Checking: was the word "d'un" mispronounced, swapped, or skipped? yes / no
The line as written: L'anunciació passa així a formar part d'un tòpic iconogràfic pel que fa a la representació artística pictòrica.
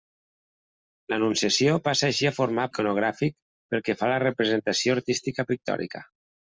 yes